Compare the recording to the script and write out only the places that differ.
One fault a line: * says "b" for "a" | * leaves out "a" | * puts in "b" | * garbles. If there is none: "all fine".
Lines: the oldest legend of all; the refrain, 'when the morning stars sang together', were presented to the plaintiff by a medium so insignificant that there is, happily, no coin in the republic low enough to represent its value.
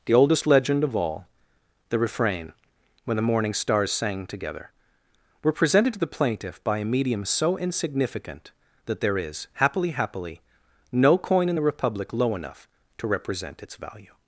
* puts in "happily"